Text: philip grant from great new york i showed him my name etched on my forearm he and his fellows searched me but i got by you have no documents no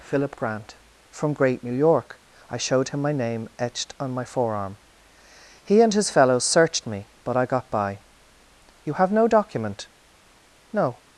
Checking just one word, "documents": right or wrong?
wrong